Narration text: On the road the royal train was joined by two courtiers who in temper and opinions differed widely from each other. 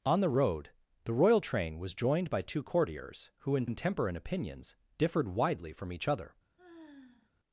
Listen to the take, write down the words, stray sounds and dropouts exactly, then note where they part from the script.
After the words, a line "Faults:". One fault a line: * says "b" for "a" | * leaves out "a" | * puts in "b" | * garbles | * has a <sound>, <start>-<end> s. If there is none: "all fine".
On the road the royal train was joined by two courtiers who in in temper and opinions differed widely from each other.
Faults:
* puts in "in"
* has a sigh, 6.6-7.3 s